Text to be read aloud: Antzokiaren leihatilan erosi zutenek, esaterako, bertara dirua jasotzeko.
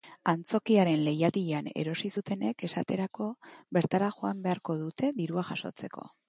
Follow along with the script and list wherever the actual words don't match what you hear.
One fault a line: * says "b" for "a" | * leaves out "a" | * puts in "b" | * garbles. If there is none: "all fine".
* puts in "joan beharko dute"